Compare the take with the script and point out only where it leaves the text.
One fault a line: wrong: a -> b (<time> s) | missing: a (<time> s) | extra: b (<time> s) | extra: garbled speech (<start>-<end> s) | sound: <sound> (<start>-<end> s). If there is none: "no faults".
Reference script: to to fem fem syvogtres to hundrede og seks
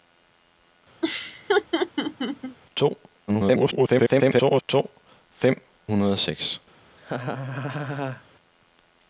sound: laugh (1.0-2.6 s)
extra: garbled speech (3.3-4.6 s)
missing: fem syvogtres to (5.5 s)
sound: laugh (7.0-8.2 s)